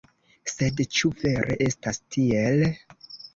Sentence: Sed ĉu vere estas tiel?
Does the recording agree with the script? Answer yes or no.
yes